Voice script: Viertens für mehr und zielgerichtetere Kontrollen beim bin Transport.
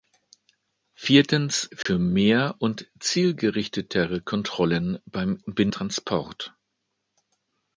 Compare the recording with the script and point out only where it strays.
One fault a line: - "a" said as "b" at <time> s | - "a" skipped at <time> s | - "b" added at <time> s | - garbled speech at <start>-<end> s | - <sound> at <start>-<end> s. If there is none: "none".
- dropout at 1.8-1.9 s